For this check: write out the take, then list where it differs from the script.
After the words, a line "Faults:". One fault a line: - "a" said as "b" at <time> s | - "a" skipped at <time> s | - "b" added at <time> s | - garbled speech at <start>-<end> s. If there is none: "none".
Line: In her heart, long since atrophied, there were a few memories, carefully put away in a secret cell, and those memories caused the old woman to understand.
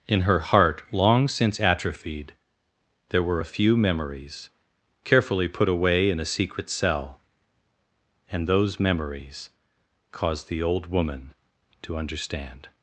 In her heart, long since atrophied, there were a few memories, carefully put away in a secret cell, and those memories caused the old woman to understand.
Faults:
none